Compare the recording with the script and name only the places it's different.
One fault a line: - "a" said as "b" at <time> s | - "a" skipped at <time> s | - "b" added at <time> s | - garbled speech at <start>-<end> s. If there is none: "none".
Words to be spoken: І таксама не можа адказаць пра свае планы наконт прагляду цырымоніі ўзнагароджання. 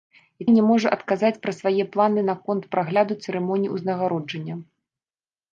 - "таксама" skipped at 0.5 s